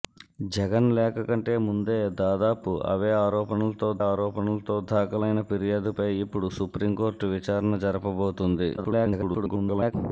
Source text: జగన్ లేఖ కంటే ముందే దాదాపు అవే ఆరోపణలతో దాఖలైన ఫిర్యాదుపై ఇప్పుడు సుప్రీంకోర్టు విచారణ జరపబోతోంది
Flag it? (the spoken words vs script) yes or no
yes